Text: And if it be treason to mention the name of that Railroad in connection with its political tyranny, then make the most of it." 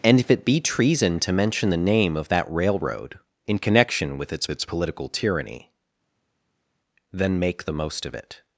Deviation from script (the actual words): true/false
true